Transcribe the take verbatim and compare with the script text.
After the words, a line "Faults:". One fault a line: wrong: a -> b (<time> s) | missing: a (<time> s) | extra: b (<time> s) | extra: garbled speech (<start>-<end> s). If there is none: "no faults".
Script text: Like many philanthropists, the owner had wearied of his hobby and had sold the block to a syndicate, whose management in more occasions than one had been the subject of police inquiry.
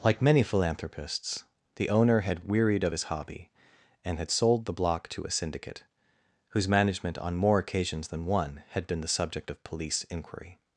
Like many philanthropists, the owner had wearied of his hobby and had sold the block to a syndicate, whose management on more occasions than one had been the subject of police inquiry.
Faults:
wrong: in -> on (7.2 s)